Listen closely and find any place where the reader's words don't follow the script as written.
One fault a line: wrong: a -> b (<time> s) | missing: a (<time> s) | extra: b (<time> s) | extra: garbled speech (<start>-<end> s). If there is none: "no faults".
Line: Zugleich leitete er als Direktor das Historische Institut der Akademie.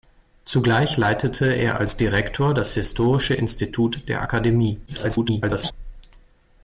extra: garbled speech (4.9-5.7 s)